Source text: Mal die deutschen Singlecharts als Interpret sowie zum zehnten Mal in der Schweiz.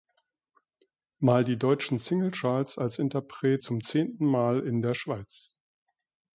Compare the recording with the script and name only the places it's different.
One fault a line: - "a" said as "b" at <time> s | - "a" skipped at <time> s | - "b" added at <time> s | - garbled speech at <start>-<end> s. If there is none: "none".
- "sowie" skipped at 3.6 s